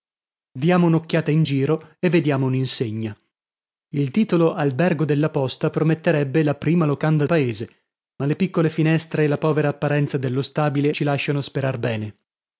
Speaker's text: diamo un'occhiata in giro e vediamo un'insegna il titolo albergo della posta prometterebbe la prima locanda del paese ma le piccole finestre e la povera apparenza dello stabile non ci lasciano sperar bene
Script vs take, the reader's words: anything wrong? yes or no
yes